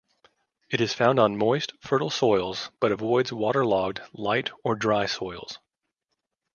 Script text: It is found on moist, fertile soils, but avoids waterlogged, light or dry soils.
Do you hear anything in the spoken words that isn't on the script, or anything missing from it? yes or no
no